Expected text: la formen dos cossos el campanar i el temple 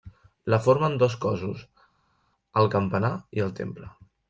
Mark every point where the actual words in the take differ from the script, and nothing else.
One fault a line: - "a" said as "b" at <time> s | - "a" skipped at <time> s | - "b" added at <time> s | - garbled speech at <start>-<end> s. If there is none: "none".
none